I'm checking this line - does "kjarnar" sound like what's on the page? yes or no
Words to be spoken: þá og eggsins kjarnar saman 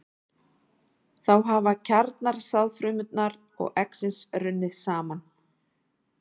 no